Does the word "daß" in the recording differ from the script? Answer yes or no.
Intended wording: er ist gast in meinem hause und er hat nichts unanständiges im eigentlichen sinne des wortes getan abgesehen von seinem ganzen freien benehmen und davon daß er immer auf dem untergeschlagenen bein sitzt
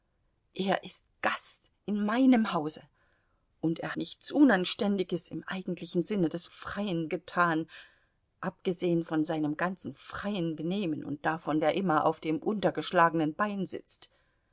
yes